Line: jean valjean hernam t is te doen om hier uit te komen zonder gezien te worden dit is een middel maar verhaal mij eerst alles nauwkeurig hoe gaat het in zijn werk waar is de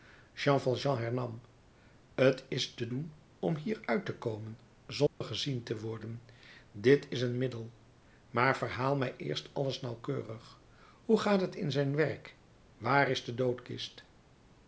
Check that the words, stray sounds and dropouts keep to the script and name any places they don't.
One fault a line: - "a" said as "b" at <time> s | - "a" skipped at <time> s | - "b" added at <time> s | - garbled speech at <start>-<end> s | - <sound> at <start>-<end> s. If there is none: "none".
- dropout at 5.1-5.2 s